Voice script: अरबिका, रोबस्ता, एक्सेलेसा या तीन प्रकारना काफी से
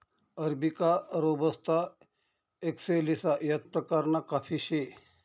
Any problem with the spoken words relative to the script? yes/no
yes